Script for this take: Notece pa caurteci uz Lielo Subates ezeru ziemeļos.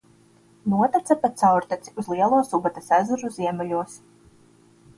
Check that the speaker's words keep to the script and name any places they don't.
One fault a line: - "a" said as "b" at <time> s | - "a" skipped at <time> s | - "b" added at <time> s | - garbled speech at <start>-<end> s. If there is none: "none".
none